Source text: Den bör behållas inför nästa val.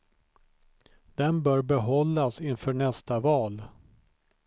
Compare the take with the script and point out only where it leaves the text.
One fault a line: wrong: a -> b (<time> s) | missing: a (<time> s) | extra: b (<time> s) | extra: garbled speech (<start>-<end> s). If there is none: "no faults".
no faults